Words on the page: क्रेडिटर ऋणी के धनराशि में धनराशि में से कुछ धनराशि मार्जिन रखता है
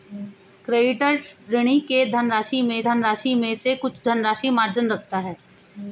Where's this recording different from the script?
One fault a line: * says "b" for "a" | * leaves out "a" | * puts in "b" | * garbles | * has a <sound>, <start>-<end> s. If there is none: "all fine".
all fine